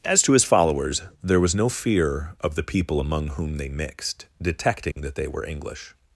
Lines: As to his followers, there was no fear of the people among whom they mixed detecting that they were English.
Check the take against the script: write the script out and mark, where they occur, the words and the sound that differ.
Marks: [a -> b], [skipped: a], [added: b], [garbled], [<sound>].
As to his followers, there was no fear of the people among whom they mixed detecting [dropout] that they were English.